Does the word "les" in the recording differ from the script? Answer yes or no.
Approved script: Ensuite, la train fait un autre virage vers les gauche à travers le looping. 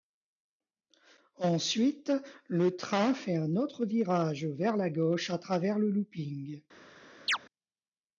yes